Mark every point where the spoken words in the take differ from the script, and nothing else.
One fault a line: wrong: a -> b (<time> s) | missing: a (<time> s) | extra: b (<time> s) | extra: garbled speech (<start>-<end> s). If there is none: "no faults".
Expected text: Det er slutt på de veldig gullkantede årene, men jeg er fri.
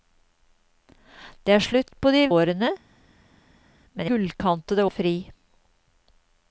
missing: veldig gullkantede (2.2 s)
wrong: jeg -> gullkantede (4.1 s)